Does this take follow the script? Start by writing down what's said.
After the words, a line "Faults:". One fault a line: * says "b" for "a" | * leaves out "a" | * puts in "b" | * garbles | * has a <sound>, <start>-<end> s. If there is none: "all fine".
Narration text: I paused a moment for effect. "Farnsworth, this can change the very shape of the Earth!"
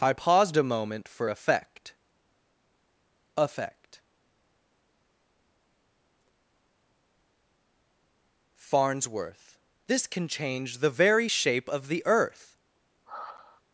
I paused a moment for effect effect. "Farnsworth, this can change the very shape of the Earth!"
Faults:
* puts in "effect"
* has a sigh, 13.0-13.6 s